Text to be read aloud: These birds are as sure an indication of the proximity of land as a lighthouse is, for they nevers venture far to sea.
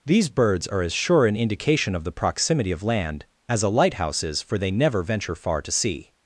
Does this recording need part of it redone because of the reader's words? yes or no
yes